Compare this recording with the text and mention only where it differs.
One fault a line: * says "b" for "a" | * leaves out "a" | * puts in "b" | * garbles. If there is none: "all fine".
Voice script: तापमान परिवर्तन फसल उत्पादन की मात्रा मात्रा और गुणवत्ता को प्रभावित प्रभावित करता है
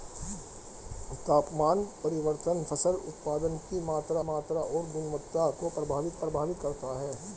all fine